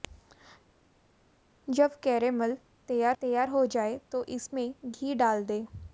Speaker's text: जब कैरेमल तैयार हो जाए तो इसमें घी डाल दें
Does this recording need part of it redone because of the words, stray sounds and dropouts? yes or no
yes